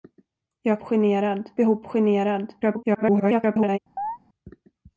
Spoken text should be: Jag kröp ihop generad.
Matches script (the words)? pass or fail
fail